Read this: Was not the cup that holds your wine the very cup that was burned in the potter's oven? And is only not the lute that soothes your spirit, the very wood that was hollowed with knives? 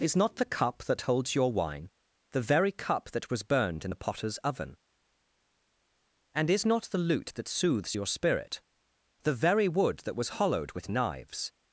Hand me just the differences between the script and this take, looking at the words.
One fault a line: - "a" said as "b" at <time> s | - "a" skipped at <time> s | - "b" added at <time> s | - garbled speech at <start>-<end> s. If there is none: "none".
- "Was" said as "Is" at 0.0 s
- "only" skipped at 6.7 s